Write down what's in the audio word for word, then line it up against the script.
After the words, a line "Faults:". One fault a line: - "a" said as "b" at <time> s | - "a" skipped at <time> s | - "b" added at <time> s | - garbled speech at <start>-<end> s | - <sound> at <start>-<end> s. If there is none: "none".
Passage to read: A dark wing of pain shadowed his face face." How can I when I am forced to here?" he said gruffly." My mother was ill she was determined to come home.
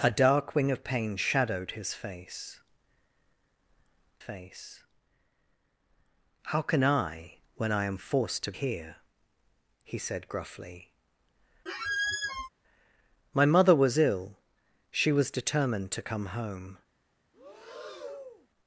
A dark wing of pain shadowed his face face." How can I when I am forced to here?" he said gruffly." My mother was ill she was determined to come home.
Faults:
- squeak at 11.7-12.5 s
- breath at 17.3-18.5 s